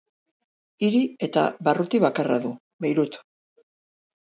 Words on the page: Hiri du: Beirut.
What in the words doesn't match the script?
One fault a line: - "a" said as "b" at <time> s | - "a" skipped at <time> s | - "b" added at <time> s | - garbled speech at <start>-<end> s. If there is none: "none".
- "eta barruti bakarra" added at 1.3 s